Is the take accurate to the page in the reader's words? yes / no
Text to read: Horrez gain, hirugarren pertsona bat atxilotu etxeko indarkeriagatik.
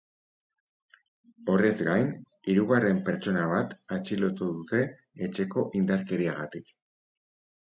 no